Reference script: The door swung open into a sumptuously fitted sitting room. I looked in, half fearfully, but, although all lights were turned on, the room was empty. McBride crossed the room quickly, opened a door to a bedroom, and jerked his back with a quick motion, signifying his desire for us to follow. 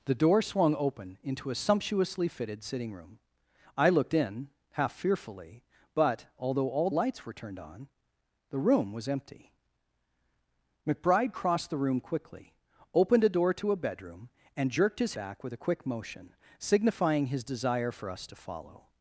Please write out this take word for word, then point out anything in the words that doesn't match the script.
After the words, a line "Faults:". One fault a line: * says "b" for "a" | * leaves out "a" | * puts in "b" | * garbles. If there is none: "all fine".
The door swung open into a sumptuously fitted sitting room. I looked in, half fearfully, but, although all lights were turned on, the room was empty. McBride crossed the room quickly, opened a door to a bedroom, and jerked his back with a quick motion, signifying his desire for us to follow.
Faults:
all fine